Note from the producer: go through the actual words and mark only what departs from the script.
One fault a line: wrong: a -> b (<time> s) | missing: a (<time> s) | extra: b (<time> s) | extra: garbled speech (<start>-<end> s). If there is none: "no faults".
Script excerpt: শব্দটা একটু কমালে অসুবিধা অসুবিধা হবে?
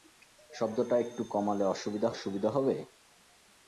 no faults